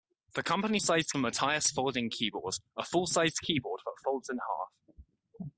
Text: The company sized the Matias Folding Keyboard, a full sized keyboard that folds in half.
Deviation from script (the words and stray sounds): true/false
false